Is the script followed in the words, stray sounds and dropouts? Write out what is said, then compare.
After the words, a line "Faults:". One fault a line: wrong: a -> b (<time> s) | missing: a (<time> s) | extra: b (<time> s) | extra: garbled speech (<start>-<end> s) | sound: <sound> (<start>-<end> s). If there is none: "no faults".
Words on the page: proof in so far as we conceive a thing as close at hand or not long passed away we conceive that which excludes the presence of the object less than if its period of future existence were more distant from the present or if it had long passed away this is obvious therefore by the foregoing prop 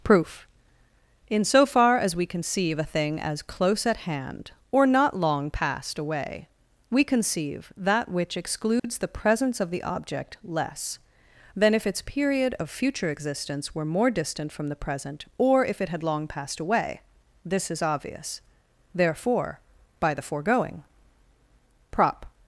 proof in so far as we conceive a thing as close at hand or not long passed away we conceive that which excludes the presence of the object less than if its period of future existence were more distant from the present or if it had long passed away this is obvious therefore by the foregoing prop
Faults:
sound: dropout (8.8-8.8 s)